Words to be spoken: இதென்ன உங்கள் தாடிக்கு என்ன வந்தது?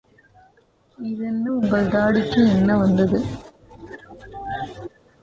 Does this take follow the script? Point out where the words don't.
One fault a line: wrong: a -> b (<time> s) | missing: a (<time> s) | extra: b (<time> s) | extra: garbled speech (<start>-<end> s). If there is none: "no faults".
no faults